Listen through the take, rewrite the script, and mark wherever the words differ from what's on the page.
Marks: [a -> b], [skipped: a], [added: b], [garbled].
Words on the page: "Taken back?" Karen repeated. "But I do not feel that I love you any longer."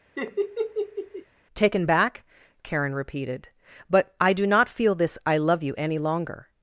"Taken back?" Karen repeated. "But I do not feel [that -> this] I love you any longer."